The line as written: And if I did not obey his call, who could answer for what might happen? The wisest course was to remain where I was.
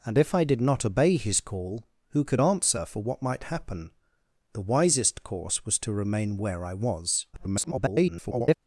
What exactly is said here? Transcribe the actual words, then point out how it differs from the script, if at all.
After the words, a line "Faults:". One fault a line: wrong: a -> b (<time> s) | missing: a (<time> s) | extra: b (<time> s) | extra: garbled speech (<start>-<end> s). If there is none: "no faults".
And if I did not obey his call, who could answer for what might happen? The wisest course was to remain where I was. [garbled]
Faults:
extra: garbled speech (7.3-8.5 s)